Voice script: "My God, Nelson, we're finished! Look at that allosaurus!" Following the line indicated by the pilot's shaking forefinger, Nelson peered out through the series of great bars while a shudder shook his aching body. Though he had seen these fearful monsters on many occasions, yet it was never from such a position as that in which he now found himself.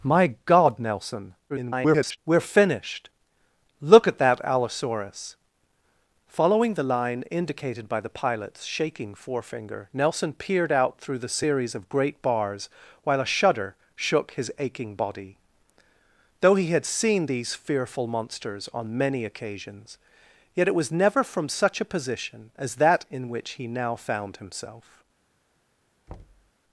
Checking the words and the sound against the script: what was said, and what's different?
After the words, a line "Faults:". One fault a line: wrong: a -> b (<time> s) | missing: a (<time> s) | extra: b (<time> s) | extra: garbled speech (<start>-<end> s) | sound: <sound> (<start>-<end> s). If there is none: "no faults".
"My God, Nelson, [garbled] we're finished! Look at that allosaurus!" Following the line indicated by the pilot's shaking forefinger, Nelson peered out through the series of great bars while a shudder shook his aching body. Though he had seen these fearful monsters on many occasions, yet it was never from such a position as that in which he now found himself.
Faults:
extra: garbled speech (1.5-2.2 s)
sound: thud (26.1-26.5 s)